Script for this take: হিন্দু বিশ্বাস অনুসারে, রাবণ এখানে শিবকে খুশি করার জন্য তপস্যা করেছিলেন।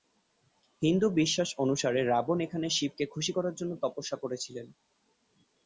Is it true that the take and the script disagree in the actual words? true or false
false